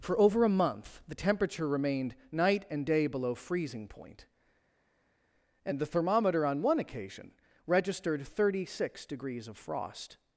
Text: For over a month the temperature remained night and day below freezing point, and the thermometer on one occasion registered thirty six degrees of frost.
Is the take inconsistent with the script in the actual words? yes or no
no